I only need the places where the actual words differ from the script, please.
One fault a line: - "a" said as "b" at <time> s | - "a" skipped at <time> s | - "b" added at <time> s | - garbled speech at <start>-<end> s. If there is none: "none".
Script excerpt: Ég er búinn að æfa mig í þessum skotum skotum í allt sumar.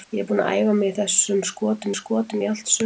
none